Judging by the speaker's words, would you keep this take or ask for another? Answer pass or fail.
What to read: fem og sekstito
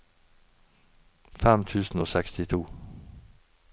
fail